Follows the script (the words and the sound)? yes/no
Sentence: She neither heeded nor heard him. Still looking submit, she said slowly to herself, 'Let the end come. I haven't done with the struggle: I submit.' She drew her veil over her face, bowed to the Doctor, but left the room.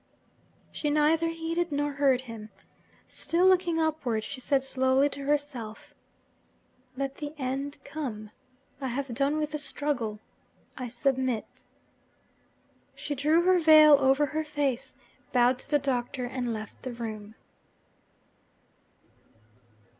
no